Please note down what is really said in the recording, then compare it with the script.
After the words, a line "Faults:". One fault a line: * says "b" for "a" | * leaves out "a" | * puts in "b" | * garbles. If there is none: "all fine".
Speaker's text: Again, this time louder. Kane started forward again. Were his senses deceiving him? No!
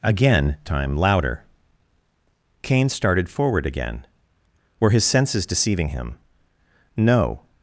Again, time louder. Kane started forward again. Were his senses deceiving him? No!
Faults:
* leaves out "this"